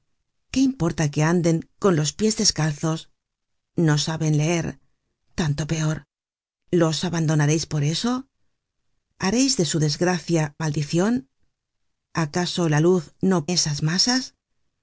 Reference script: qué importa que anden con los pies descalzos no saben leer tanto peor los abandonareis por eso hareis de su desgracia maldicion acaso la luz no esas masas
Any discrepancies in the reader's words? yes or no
no